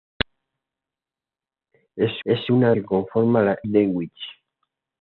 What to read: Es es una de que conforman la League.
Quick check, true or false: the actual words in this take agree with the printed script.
true